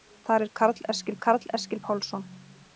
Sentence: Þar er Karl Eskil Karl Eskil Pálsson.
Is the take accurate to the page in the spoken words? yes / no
yes